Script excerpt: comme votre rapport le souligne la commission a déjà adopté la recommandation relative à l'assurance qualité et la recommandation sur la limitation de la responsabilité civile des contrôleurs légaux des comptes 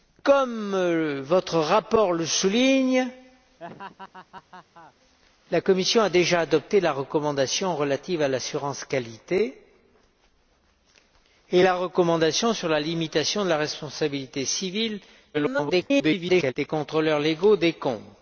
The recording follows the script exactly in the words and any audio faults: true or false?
false